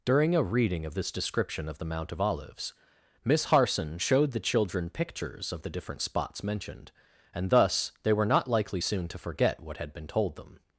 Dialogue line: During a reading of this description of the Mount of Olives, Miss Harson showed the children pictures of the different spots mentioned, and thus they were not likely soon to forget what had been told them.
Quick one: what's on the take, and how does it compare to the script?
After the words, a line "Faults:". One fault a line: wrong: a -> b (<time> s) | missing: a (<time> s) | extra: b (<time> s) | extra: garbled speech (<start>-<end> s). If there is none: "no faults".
During a reading of this description of the Mount of Olives, Miss Harson showed the children pictures of the different spots mentioned, and thus they were not likely soon to forget what had been told them.
Faults:
no faults